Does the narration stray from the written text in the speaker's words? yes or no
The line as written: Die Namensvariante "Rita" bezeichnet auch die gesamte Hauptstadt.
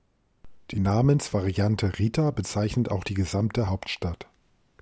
no